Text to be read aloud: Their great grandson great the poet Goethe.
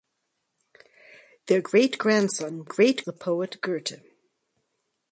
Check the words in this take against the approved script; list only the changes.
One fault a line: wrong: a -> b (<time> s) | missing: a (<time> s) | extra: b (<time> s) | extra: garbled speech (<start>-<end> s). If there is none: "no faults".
no faults